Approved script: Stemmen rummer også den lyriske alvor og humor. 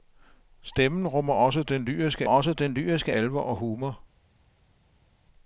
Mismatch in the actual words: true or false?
true